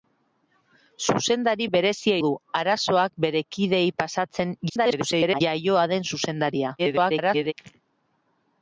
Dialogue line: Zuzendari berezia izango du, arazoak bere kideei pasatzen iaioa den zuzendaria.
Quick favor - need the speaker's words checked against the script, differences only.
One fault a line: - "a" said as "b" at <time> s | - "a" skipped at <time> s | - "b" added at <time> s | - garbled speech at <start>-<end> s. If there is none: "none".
- "izango" skipped at 2.1 s
- garbled speech at 4.7-5.4 s
- garbled speech at 6.8-7.5 s